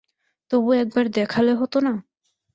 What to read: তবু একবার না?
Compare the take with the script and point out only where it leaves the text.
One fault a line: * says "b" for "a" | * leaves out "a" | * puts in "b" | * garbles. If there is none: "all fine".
* puts in "দেখালে হত"